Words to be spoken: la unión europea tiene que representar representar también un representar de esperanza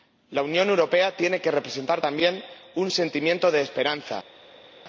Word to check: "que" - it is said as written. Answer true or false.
true